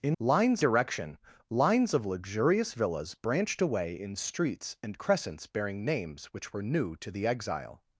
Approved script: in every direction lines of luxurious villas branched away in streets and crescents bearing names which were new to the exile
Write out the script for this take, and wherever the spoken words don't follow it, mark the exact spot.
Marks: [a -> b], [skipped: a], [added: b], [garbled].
in [every -> lines] direction lines of luxurious villas branched away in streets and crescents bearing names which were new to the exile